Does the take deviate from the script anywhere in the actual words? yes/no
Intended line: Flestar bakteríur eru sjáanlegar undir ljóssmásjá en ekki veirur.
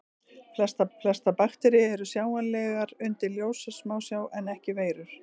yes